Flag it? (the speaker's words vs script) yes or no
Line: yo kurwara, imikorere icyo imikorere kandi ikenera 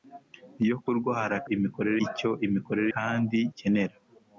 no